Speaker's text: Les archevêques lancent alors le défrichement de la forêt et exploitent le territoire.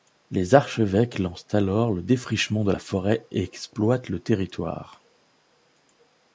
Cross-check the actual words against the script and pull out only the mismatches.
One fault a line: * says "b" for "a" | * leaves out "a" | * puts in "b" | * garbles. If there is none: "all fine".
all fine